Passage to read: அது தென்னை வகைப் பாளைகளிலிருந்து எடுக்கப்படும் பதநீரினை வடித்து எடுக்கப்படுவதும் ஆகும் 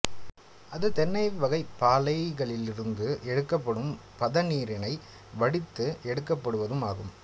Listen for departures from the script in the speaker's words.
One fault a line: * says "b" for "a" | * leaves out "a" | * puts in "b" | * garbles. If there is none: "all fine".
all fine